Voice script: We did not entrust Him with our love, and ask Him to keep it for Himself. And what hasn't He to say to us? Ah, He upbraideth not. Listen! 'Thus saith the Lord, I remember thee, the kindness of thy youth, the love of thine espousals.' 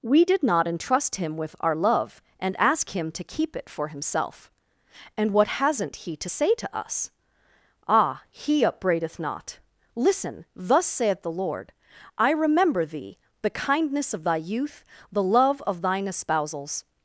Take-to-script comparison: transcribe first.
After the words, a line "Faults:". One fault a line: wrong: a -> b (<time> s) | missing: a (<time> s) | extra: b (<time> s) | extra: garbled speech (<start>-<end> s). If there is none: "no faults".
We did not entrust Him with our love, and ask Him to keep it for Himself. And what hasn't He to say to us? Ah, He upbraideth not. Listen! 'Thus saith the Lord, I remember thee, the kindness of thy youth, the love of thine espousals.'
Faults:
no faults